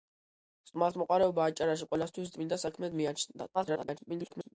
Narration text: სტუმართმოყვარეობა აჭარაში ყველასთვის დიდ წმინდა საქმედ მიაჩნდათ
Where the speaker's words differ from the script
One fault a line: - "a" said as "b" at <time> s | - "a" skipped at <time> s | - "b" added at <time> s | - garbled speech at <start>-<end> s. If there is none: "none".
- "დიდ" skipped at 2.3 s
- garbled speech at 3.5-4.5 s